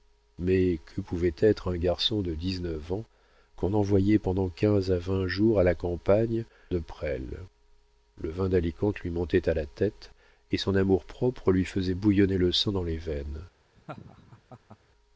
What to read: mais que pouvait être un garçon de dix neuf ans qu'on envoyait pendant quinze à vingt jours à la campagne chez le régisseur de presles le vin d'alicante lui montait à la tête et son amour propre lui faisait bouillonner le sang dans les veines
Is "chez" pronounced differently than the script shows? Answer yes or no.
yes